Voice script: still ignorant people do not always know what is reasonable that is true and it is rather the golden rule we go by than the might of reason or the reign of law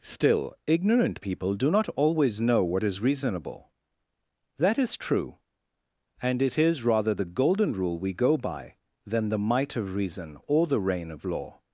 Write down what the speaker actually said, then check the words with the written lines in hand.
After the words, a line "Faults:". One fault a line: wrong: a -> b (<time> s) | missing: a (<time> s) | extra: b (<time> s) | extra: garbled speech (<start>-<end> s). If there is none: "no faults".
still ignorant people do not always know what is reasonable that is true and it is rather the golden rule we go by than the might of reason or the reign of law
Faults:
no faults